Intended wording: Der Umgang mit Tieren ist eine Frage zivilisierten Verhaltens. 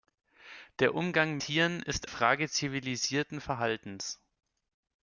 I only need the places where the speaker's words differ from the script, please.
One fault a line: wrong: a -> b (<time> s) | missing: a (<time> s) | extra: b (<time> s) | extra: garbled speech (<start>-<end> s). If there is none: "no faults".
missing: mit (1.4 s)
missing: eine (2.1 s)